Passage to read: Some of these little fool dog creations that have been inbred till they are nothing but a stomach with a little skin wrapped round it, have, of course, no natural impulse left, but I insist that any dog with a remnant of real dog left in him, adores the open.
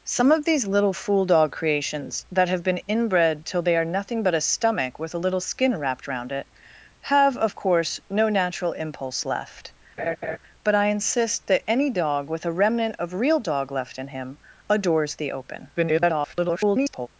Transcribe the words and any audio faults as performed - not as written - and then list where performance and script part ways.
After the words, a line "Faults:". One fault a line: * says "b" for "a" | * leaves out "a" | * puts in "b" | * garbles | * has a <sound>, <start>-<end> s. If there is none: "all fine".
Some of these little fool dog creations that have been inbred till they are nothing but a stomach with a little skin wrapped round it, have, of course, no natural impulse left, but I insist that any dog with a remnant of real dog left in him, adores the open. [garbled]
Faults:
* has a laugh, 10.0-10.4 s
* garbles